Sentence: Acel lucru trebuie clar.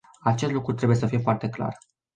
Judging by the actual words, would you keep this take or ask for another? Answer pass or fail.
fail